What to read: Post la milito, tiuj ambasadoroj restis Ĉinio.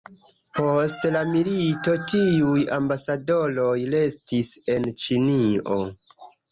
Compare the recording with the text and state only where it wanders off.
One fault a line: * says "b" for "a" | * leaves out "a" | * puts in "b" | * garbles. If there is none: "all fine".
* puts in "en"